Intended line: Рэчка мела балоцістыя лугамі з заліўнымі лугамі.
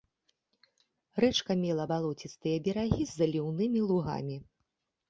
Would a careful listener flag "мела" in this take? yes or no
no